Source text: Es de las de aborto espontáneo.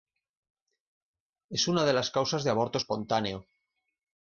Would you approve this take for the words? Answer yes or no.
no